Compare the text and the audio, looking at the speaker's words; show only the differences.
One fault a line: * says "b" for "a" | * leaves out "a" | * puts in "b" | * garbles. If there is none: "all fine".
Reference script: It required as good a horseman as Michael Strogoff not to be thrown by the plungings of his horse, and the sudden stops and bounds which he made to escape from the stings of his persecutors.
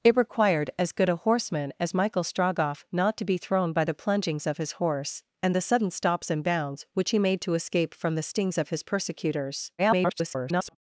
* garbles